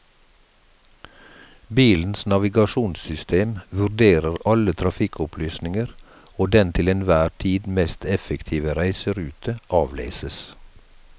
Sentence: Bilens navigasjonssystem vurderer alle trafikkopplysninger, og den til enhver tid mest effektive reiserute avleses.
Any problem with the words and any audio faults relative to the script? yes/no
no